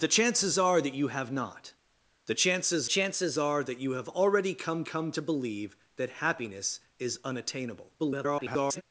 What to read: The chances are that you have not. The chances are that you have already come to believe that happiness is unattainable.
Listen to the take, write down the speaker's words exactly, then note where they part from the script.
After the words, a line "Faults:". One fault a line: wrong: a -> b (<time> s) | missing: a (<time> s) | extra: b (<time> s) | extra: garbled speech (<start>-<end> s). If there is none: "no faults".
The chances are that you have not. The chances chances are that you have already come come to believe that happiness is unattainable. [garbled]
Faults:
extra: chances (2.8 s)
extra: come (4.8 s)
extra: garbled speech (8.0-8.8 s)